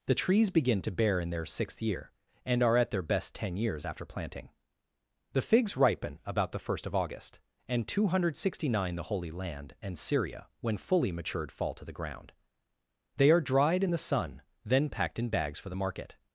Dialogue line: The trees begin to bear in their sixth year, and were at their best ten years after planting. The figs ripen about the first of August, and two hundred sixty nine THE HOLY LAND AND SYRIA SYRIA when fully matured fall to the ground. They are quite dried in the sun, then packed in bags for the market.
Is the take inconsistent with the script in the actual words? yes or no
yes